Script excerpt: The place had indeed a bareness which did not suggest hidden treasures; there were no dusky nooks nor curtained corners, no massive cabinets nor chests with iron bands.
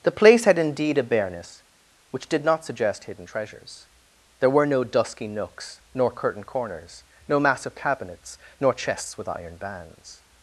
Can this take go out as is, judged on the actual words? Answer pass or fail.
pass